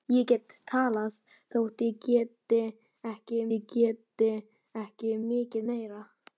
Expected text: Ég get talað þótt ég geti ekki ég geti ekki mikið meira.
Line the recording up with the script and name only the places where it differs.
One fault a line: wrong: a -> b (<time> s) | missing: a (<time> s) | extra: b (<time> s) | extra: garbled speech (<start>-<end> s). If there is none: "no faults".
no faults